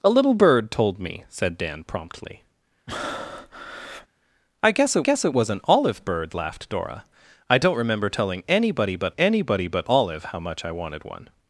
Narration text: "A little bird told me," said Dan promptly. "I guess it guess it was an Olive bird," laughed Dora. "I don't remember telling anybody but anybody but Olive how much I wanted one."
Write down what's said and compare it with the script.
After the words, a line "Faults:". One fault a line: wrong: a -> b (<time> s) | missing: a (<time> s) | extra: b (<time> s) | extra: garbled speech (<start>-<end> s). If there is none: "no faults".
"A little bird told me," said Dan promptly. "I guess it guess it was an Olive bird," laughed Dora. "I don't remember telling anybody but anybody but Olive how much I wanted one."
Faults:
no faults